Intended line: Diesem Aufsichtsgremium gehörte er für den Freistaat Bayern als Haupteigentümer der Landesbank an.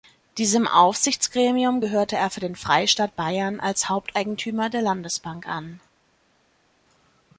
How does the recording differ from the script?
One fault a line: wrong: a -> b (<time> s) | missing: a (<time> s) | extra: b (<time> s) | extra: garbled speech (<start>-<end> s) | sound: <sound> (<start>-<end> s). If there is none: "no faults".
no faults